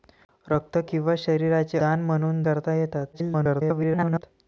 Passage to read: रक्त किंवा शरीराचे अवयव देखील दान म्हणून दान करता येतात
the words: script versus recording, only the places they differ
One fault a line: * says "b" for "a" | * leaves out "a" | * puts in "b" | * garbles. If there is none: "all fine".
* leaves out "अवयव देखील"
* leaves out "दान"
* garbles